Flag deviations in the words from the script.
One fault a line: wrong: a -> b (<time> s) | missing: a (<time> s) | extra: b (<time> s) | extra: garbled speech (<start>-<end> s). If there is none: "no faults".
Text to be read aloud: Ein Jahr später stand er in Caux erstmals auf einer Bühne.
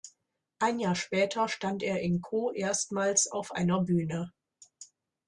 no faults